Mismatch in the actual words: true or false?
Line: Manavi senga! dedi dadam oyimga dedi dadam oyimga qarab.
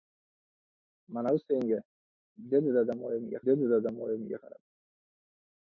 false